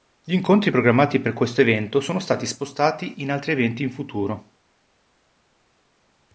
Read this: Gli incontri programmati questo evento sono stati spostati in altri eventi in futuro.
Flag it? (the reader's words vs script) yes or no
yes